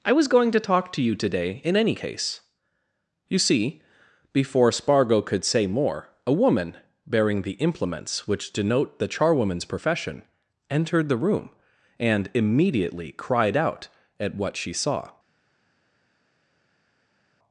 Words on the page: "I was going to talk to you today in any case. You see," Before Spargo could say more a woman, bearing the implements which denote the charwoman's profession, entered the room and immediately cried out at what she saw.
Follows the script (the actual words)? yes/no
yes